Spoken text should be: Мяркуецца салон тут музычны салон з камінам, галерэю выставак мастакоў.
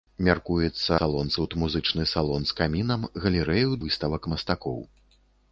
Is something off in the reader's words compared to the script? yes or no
no